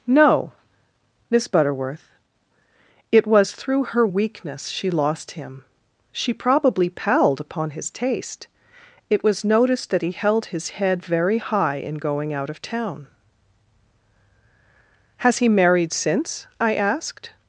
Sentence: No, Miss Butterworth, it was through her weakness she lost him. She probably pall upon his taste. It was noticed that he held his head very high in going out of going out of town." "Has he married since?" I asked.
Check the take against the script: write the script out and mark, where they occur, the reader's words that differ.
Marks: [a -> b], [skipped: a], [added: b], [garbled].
No, Miss Butterworth, it was through her weakness she lost him. She probably [pall -> palled] upon his taste. It was noticed that he held his head very high in going out of [skipped: going out of] town." "Has he married since?" I asked.